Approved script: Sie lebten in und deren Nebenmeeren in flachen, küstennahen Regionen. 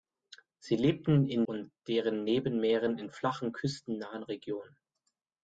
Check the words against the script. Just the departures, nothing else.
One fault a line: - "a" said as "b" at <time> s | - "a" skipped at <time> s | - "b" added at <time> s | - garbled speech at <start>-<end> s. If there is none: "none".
none